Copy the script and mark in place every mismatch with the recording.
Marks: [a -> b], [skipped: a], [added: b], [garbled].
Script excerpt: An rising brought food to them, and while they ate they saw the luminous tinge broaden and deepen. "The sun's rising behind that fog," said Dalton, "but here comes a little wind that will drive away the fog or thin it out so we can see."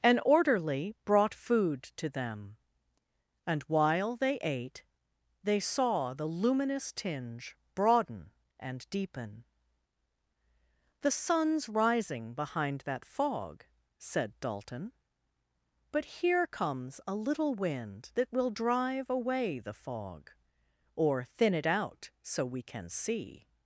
An [rising -> orderly] brought food to them, and while they ate they saw the luminous tinge broaden and deepen. "The sun's rising behind that fog," said Dalton, "but here comes a little wind that will drive away the fog or thin it out so we can see."